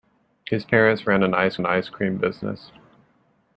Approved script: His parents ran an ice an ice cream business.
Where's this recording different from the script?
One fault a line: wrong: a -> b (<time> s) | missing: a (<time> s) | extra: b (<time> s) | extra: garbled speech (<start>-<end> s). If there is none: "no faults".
no faults